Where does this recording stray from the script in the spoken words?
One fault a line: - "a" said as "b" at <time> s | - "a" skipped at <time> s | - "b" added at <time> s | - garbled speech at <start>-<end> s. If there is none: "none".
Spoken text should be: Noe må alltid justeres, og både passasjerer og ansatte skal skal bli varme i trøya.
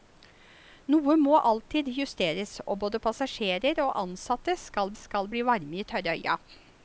none